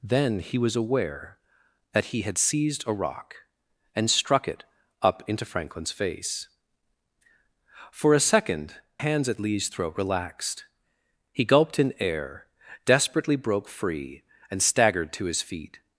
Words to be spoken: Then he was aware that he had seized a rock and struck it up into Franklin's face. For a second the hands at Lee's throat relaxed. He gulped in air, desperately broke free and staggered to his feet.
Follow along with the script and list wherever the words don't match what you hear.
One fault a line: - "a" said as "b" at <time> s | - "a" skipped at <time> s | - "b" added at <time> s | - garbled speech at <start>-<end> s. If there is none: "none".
- "the" skipped at 8.8 s